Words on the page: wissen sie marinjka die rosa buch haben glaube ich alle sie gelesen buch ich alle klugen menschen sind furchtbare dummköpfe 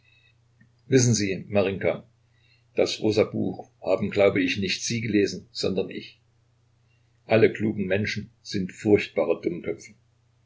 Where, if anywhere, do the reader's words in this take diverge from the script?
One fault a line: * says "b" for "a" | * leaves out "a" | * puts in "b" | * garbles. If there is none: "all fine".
* says "das" for "die"
* says "nicht" for "alle"
* says "sondern" for "buch"